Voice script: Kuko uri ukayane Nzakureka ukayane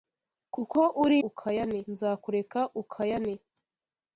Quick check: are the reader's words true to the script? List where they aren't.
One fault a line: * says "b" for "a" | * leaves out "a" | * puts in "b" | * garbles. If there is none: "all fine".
all fine